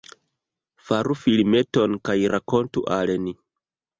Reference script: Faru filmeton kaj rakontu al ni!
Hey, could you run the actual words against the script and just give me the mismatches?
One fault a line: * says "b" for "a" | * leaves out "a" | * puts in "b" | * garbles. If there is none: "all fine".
all fine